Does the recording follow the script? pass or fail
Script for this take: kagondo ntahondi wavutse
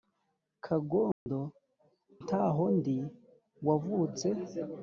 pass